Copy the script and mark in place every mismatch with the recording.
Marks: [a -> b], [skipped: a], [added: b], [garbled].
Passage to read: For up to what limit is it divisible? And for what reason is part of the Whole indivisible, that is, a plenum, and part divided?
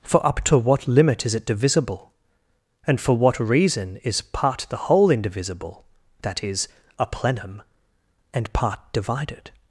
For up to what limit is it divisible? And for what reason is part [skipped: of] the Whole indivisible, that is, a plenum, and part divided?